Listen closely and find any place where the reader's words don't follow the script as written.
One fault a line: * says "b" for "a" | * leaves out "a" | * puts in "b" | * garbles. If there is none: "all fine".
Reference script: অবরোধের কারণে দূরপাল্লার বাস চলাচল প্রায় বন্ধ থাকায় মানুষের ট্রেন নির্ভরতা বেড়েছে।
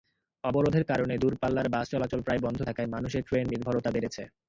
all fine